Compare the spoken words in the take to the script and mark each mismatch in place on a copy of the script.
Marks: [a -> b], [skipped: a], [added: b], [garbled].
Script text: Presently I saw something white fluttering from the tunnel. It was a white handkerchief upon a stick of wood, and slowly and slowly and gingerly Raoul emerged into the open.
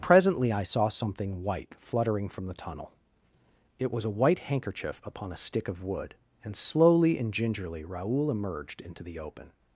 Presently I saw something white fluttering from the tunnel. It was a white handkerchief upon a stick of wood, and slowly and [skipped: slowly and] gingerly Raoul emerged into the open.